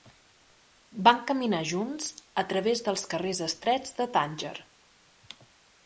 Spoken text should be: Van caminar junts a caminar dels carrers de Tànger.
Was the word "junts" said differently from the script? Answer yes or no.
no